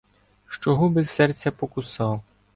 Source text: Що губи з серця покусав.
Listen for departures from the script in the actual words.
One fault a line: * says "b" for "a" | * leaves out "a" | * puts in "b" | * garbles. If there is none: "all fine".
all fine